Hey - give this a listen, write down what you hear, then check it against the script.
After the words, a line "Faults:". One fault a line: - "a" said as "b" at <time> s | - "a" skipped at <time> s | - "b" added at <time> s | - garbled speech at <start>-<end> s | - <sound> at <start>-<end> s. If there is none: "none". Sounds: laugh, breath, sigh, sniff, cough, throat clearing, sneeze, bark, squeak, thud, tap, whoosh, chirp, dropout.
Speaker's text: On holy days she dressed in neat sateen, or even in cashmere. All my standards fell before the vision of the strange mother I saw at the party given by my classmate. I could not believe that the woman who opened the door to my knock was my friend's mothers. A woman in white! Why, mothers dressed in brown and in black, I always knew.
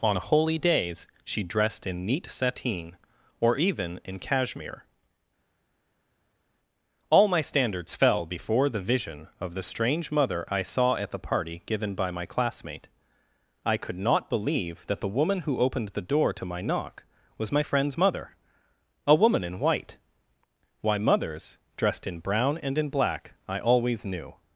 On holy days she dressed in neat sateen, or even in cashmere. All my standards fell before the vision of the strange mother I saw at the party given by my classmate. I could not believe that the woman who opened the door to my knock was my friend's mother. A woman in white! Why, mothers dressed in brown and in black, I always knew.
Faults:
- "mothers" said as "mother" at 18.0 s